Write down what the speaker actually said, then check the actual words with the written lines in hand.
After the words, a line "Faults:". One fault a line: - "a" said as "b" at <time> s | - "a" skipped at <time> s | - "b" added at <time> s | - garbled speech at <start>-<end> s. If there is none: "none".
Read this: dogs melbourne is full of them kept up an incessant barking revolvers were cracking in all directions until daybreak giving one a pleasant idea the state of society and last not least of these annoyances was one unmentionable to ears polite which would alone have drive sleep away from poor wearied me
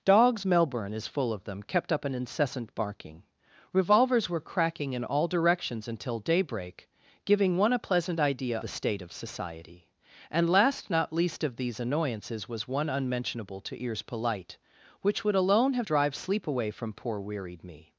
dogs melbourne is full of them kept up an incessant barking revolvers were cracking in all directions until daybreak giving one a pleasant idea the state of society and last not least of these annoyances was one unmentionable to ears polite which would alone have drive sleep away from poor wearied me
Faults:
none